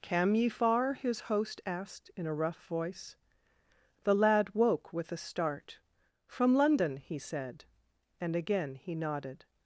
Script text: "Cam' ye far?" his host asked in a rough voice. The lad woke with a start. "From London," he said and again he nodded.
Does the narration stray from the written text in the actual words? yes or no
no